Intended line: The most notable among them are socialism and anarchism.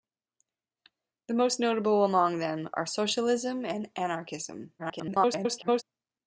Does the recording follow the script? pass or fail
fail